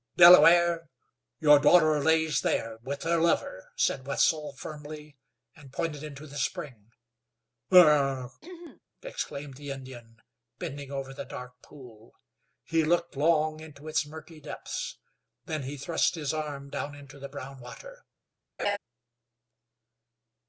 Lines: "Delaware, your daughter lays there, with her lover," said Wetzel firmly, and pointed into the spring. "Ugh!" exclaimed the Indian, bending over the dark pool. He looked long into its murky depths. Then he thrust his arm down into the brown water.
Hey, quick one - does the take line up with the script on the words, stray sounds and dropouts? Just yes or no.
no